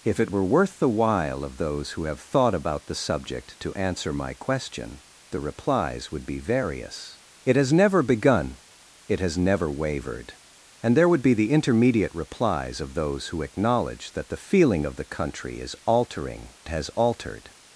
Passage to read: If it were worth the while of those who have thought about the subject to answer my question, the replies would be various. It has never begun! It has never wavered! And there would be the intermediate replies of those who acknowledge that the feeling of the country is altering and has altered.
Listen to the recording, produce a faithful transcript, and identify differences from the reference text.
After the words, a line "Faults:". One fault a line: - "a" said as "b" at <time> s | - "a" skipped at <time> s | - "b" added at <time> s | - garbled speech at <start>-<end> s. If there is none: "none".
If it were worth the while of those who have thought about the subject to answer my question, the replies would be various. It has never begun! It has never wavered! And there would be the intermediate replies of those who acknowledge that the feeling of the country is altering has altered.
Faults:
- "and" skipped at 16.5 s